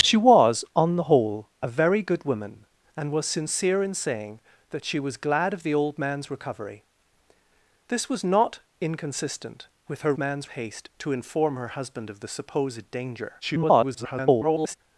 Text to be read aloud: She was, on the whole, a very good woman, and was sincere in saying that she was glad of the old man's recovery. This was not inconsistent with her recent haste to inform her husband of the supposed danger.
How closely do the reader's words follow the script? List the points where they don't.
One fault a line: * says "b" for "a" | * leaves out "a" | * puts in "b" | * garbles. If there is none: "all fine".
* says "man's" for "recent"
* garbles